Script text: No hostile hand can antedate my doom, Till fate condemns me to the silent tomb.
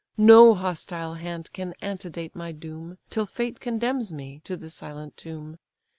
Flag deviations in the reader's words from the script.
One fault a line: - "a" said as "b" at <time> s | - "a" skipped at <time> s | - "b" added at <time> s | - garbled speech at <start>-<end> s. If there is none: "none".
none